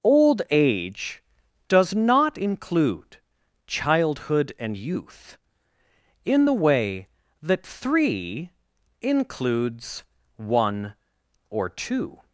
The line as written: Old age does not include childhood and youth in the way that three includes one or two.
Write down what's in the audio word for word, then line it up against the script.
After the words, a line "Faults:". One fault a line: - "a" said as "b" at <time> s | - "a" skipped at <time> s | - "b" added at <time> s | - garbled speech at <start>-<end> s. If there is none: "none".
Old age does not include childhood and youth in the way that three includes one or two.
Faults:
none